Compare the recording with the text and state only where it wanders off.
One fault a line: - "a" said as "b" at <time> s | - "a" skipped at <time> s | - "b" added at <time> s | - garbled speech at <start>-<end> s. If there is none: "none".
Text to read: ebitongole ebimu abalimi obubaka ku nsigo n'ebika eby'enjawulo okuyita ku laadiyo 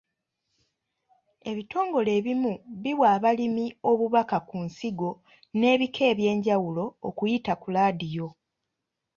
- "biwa" added at 2.8 s